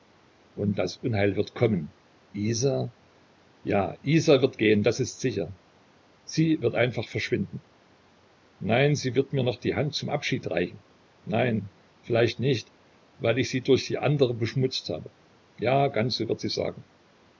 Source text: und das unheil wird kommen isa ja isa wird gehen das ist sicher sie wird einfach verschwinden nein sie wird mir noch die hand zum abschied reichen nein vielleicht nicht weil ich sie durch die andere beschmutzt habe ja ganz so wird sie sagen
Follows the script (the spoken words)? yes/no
yes